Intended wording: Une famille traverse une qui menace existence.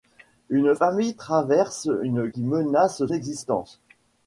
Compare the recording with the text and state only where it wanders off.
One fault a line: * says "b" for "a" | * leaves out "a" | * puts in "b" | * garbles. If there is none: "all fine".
all fine